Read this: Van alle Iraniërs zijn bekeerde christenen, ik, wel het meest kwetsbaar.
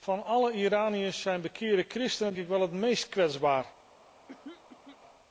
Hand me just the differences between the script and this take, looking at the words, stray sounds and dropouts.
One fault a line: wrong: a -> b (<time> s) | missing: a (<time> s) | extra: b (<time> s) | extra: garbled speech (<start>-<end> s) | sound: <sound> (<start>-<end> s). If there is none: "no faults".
sound: throat clearing (4.3-5.0 s)